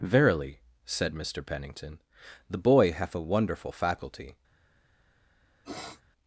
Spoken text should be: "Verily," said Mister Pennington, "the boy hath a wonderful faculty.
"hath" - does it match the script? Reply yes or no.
yes